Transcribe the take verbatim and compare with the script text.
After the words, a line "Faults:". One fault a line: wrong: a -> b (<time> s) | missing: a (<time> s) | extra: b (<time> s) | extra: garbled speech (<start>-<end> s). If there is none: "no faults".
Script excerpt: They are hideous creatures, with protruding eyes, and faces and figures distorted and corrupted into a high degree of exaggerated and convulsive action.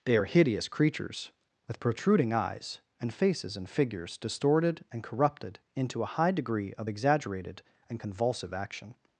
They are hideous creatures, with protruding eyes, and faces and figures distorted and corrupted into a high degree of exaggerated and convulsive action.
Faults:
no faults